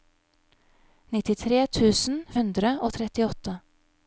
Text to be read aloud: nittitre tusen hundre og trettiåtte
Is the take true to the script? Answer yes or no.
yes